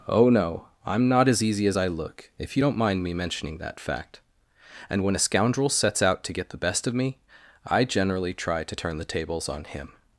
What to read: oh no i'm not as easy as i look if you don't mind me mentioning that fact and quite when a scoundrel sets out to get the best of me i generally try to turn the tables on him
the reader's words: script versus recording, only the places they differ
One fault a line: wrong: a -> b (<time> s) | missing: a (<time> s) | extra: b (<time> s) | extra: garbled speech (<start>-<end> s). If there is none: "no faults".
missing: quite (5.0 s)